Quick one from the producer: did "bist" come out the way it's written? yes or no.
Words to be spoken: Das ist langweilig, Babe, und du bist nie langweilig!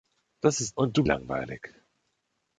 no